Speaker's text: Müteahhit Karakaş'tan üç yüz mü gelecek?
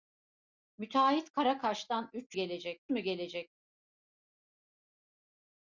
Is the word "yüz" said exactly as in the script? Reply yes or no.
no